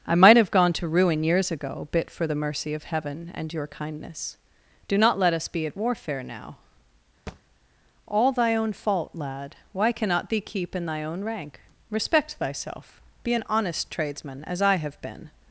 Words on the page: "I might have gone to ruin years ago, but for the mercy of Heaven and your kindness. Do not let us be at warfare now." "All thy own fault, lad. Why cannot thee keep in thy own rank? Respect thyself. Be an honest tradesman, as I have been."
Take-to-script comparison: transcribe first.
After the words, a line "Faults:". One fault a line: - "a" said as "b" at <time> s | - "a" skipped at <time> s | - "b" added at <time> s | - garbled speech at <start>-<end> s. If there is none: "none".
"I might have gone to ruin years ago, bit for the mercy of Heaven and your kindness. Do not let us be at warfare now." "All thy own fault, lad. Why cannot thee keep in thy own rank? Respect thyself. Be an honest tradesman, as I have been."
Faults:
- "but" said as "bit" at 1.9 s